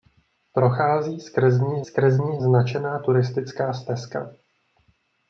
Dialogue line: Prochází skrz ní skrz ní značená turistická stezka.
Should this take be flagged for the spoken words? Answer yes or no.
no